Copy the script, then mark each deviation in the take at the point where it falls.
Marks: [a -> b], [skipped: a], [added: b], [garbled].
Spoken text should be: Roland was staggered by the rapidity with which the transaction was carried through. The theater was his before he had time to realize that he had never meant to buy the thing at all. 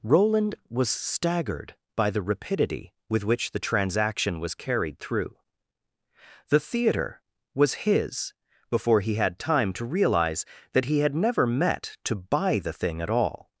Roland was staggered by the rapidity with which the transaction was carried through. The theater was his before he had time to realize that he had never [meant -> met] to buy the thing at all.